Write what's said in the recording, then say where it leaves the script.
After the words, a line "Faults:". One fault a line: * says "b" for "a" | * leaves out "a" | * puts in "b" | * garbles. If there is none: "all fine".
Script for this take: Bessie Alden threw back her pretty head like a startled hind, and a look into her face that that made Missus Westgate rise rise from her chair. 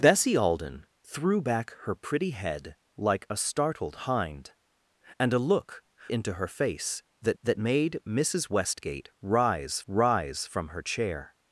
Bessie Alden threw back her pretty head like a startled hind, and a look into her face that that made Missus Westgate rise rise from her chair.
Faults:
all fine